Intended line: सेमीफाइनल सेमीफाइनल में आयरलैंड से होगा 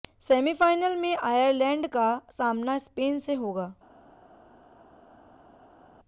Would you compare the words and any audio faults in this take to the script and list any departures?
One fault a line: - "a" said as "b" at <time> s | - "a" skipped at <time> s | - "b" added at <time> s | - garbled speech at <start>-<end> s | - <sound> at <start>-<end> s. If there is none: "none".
- "सेमीफाइनल" skipped at 0.9 s
- "का सामना स्पेन" added at 1.9 s